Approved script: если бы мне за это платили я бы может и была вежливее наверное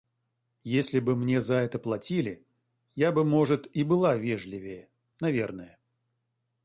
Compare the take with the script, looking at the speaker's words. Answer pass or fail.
pass